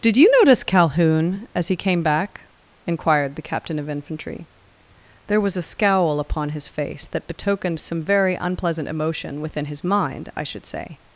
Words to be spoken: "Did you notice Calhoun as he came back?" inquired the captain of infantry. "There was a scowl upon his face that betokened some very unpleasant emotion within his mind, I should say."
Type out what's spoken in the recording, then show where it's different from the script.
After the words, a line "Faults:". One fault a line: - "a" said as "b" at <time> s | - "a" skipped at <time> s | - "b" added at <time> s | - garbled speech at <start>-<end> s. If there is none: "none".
"Did you notice Calhoun as he came back?" inquired the captain of infantry. "There was a scowl upon his face that betokened some very unpleasant emotion within his mind, I should say."
Faults:
none